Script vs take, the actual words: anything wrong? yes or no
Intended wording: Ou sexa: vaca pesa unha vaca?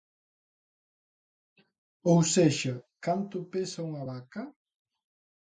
yes